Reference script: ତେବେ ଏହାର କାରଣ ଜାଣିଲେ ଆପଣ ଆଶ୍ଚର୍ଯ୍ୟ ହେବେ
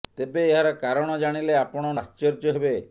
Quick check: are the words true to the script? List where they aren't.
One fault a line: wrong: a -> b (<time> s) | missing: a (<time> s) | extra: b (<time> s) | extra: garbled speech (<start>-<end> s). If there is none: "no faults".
no faults